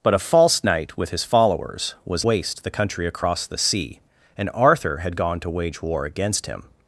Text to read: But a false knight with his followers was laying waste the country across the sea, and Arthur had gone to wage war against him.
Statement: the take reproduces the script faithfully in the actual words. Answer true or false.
false